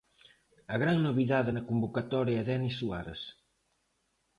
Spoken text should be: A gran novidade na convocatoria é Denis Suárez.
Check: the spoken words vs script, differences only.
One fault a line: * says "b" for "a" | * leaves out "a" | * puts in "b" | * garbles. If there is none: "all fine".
all fine